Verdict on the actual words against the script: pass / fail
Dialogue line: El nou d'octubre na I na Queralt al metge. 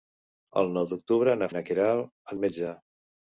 pass